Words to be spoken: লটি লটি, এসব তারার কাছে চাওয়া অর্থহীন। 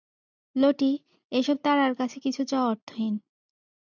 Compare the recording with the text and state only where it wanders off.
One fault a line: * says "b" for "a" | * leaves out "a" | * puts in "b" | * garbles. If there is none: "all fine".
* leaves out "লটি"
* puts in "কিছু"